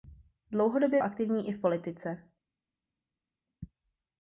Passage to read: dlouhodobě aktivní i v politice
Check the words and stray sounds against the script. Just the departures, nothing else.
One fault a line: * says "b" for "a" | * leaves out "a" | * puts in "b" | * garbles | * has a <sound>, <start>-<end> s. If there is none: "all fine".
all fine